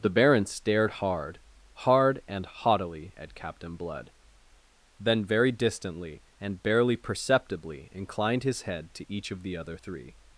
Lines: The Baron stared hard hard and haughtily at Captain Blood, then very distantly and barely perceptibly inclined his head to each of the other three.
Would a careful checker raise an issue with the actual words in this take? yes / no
no